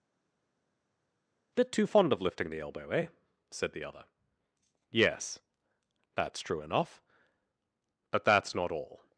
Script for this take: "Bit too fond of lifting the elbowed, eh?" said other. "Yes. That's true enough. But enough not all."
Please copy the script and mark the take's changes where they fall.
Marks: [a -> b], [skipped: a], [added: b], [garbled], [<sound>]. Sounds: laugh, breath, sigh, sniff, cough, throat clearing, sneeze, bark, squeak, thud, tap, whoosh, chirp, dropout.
"Bit too fond of lifting the [elbowed, -> elbow] eh?" said [added: the] other. "Yes. That's true enough. But [enough -> that's] not all."